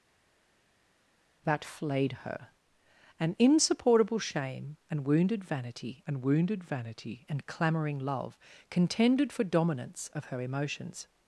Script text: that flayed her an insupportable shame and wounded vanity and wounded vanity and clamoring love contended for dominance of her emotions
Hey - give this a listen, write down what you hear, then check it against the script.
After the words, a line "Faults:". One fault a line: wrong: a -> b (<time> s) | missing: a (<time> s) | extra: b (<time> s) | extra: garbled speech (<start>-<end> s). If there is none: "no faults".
that flayed her an insupportable shame and wounded vanity and wounded vanity and clamoring love contended for dominance of her emotions
Faults:
no faults